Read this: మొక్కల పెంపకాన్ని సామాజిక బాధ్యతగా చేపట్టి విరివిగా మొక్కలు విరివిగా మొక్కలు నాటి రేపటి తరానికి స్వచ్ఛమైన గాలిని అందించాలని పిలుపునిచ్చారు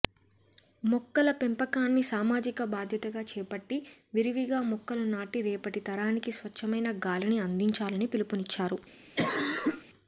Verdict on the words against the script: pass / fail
fail